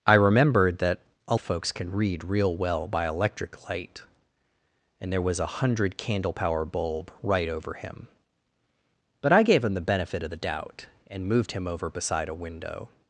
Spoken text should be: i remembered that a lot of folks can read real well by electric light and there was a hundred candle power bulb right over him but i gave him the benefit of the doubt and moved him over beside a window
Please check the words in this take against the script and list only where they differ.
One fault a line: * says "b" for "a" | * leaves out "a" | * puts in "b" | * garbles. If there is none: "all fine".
* leaves out "lot"